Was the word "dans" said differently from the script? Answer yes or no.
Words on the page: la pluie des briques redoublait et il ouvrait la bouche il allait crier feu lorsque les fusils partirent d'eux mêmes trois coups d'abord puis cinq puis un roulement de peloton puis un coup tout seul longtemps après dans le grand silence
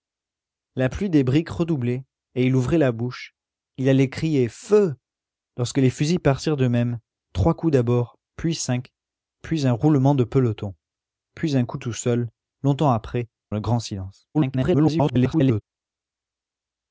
yes